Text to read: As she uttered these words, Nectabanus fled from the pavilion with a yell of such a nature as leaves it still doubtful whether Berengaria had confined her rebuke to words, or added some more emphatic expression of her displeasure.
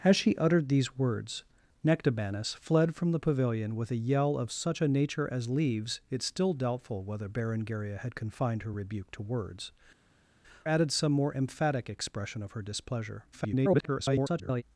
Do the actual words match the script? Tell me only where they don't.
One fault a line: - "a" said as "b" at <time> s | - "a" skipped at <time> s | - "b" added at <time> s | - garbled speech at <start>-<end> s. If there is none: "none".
- "or" skipped at 9.7 s
- garbled speech at 13.3-14.6 s